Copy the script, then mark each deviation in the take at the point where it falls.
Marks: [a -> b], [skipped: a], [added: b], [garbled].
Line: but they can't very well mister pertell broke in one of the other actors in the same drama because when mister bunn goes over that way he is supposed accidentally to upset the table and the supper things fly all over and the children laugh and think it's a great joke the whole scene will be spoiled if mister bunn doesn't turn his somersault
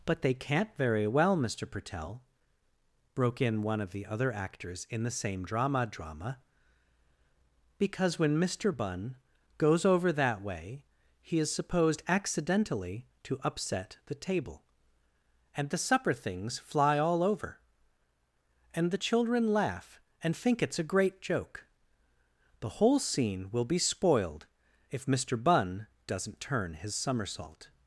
but they can't very well mister pertell broke in one of the other actors in the same drama [added: drama] because when mister bunn goes over that way he is supposed accidentally to upset the table and the supper things fly all over and the children laugh and think it's a great joke the whole scene will be spoiled if mister bunn doesn't turn his somersault